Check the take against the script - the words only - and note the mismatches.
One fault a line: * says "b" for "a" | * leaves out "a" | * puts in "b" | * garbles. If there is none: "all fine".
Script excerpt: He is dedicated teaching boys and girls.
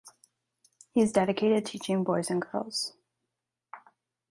all fine